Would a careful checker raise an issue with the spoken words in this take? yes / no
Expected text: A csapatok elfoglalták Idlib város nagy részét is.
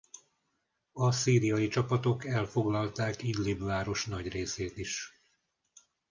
yes